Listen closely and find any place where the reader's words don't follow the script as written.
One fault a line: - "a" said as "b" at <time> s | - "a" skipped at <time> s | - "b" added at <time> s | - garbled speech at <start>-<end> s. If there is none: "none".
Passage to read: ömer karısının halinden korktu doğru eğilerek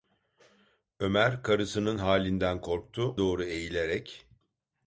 none